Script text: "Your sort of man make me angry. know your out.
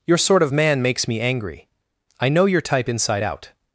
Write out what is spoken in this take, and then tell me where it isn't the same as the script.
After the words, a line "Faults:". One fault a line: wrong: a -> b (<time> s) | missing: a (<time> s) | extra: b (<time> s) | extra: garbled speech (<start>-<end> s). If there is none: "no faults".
"Your sort of man makes me angry. I know your type inside out.
Faults:
wrong: make -> makes (0.8 s)
extra: I (2.2 s)
extra: type inside (2.6 s)